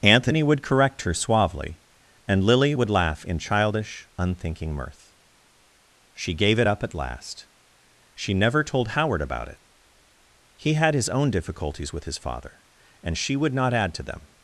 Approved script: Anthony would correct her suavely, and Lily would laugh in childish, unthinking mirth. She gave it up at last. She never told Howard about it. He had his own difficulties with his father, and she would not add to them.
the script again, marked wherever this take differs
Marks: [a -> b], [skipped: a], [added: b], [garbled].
Anthony would correct her suavely, and Lily would laugh in childish, unthinking mirth. She gave it up at last. She never told Howard about it. He had his own difficulties with his father, and she would not add to them.